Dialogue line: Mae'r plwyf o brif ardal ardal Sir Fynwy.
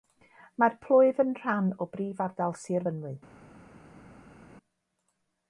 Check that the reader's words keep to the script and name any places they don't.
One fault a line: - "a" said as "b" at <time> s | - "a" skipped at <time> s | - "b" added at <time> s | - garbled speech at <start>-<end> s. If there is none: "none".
- "yn rhan" added at 1.2 s
- "ardal" skipped at 2.6 s